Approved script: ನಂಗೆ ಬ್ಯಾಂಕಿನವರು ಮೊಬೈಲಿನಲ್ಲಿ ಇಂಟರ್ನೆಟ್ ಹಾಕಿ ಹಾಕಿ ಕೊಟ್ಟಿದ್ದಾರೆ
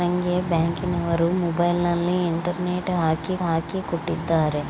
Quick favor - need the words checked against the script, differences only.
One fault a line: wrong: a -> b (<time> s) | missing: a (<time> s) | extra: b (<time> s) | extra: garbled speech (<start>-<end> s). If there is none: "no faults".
no faults